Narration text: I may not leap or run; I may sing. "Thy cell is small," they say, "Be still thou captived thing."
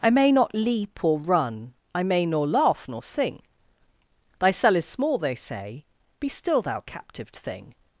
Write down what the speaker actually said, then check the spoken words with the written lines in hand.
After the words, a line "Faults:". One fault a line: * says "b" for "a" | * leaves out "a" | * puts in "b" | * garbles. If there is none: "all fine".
I may not leap or run; I may nor laugh nor sing. "Thy cell is small," they say, "Be still thou captived thing."
Faults:
* puts in "nor laugh nor"